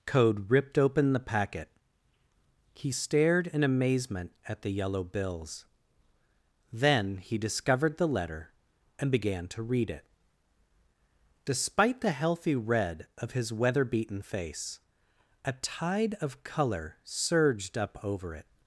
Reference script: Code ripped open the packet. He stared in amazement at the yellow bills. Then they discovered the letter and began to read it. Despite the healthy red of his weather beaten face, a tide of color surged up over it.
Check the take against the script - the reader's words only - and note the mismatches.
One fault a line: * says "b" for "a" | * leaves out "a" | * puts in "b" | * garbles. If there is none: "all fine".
* says "he" for "they"